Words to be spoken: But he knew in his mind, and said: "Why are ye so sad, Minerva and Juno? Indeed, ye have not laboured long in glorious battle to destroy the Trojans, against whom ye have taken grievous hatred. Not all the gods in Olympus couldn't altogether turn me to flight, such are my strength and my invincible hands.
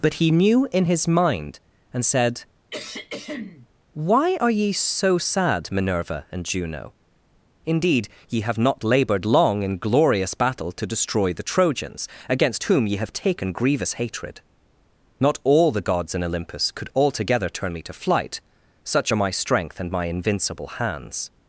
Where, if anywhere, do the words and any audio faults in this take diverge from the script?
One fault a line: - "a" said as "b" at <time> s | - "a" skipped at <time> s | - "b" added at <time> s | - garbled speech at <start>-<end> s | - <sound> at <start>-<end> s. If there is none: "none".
- throat clearing at 2.7-3.7 s
- "couldn't" said as "could" at 16.7 s